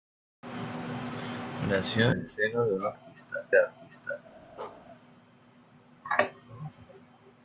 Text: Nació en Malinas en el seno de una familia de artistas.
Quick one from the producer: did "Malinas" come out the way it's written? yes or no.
no